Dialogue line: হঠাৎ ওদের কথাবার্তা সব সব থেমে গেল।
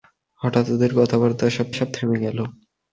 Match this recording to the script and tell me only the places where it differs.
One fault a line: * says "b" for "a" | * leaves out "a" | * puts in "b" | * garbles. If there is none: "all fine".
all fine